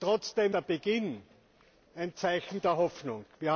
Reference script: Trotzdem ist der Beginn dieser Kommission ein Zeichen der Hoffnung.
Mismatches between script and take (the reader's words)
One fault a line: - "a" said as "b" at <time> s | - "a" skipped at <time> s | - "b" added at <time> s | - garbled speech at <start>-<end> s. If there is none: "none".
- "ist" skipped at 0.6 s
- "dieser Kommission" skipped at 1.2 s